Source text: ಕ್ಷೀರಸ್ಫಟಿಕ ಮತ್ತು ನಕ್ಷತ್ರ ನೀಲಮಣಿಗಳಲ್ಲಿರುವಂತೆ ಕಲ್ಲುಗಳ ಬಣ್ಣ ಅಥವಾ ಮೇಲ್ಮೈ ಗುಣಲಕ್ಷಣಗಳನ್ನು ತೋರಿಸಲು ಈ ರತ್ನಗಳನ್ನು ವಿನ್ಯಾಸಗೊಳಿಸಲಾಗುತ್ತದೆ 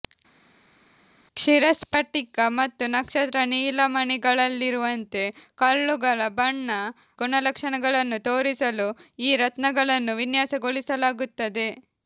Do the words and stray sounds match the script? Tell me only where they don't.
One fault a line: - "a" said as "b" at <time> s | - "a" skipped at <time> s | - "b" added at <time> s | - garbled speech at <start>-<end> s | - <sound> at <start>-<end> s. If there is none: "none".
- "ಅಥವಾ ಮೇಲ್ಮೈ" skipped at 6.7 s